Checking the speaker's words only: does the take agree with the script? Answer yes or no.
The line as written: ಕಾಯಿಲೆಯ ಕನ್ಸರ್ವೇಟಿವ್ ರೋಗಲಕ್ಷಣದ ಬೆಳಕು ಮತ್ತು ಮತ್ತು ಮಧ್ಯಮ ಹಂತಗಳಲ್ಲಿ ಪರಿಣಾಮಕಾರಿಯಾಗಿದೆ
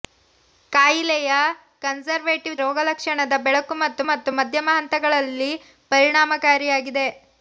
yes